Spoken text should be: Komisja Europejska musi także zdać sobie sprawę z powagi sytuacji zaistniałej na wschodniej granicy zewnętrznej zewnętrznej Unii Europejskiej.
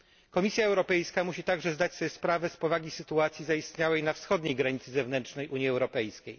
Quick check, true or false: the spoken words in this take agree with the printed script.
false